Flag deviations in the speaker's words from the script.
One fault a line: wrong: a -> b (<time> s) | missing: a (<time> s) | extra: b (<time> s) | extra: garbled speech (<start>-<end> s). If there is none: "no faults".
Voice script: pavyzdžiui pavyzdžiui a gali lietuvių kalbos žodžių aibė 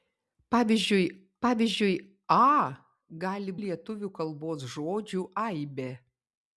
no faults